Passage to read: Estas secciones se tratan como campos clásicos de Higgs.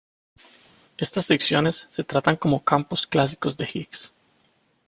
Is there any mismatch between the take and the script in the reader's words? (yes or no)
no